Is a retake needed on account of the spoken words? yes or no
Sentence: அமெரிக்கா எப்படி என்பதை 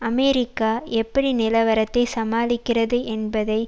yes